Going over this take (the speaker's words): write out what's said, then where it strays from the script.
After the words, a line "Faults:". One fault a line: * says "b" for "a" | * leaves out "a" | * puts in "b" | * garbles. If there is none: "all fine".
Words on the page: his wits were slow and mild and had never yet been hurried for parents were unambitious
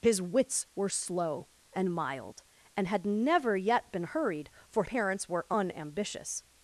his wits were slow and mild and had never yet been hurried for parents were unambitious
Faults:
all fine